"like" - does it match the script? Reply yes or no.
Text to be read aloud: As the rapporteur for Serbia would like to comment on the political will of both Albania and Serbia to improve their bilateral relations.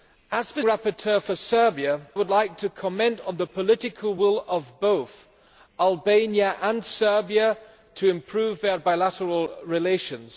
yes